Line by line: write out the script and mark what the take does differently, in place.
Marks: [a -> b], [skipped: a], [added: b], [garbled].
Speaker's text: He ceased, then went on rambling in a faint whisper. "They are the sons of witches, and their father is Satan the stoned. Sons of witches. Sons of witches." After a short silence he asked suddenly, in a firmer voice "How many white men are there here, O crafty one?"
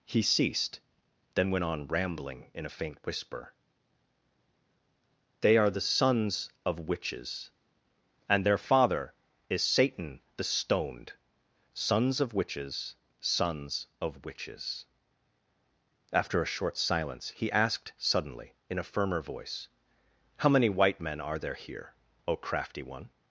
He ceased, then went on rambling in a faint whisper. "They are the sons of witches, and their father is Satan the stoned. Sons of witches. Sons of witches." After a short silence he asked suddenly, in a firmer voice "How many white men are there here, O crafty one?"